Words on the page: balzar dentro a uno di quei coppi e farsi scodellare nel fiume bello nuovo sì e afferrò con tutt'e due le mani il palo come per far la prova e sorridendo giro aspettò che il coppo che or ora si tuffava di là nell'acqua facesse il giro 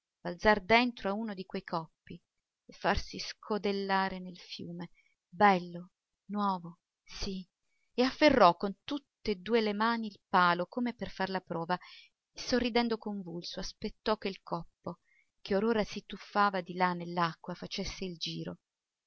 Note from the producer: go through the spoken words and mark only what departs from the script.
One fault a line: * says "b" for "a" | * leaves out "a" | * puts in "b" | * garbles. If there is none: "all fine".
* says "convulso" for "giro"